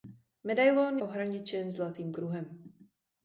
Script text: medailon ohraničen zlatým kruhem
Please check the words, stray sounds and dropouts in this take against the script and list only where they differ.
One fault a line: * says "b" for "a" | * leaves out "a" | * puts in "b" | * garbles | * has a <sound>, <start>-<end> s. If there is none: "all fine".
all fine